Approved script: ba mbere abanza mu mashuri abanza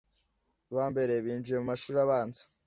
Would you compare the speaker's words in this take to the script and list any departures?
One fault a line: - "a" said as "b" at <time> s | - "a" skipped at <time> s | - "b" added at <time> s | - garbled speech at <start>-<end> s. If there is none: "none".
- "abanza" said as "binjiye" at 1.2 s